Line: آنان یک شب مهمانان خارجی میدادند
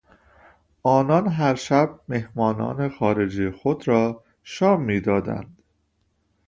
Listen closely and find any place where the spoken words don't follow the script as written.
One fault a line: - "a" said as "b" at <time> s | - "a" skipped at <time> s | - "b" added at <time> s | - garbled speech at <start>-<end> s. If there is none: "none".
- "یک" said as "هر" at 1.3 s
- "خود را شام" added at 3.5 s